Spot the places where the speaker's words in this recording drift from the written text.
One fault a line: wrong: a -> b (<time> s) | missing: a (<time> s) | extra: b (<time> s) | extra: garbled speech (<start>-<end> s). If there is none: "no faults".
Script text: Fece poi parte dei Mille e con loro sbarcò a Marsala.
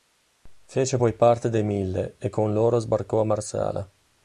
no faults